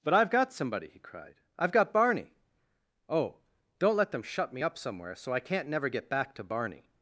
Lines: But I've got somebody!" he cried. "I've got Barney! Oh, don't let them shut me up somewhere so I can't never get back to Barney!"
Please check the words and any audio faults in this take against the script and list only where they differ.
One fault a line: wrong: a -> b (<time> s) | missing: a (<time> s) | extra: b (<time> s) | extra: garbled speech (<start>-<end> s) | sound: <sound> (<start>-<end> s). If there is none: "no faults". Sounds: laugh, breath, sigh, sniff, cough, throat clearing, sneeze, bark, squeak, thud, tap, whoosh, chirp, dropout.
no faults